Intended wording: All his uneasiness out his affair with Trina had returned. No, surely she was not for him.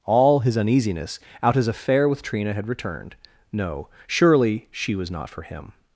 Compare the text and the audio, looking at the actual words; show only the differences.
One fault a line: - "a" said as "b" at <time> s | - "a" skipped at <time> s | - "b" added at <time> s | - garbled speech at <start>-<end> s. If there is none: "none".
none